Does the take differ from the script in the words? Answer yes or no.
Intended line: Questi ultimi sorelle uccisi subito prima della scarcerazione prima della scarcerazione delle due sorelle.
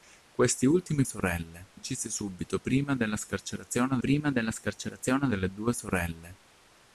no